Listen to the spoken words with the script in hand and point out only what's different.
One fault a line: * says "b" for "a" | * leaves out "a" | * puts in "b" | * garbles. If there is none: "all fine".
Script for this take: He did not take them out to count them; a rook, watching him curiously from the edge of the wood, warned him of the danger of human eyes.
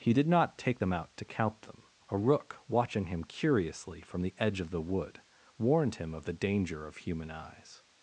all fine